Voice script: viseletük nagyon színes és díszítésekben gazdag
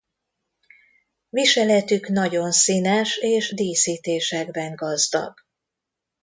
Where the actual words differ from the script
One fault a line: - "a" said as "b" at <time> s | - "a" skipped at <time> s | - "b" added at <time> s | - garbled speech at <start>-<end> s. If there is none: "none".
none